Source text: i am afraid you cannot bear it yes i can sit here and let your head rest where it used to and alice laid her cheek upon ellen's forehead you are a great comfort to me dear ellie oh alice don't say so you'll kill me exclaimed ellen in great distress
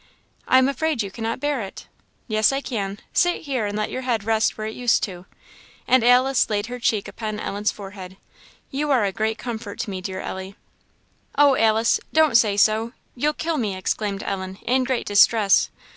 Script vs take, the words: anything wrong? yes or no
no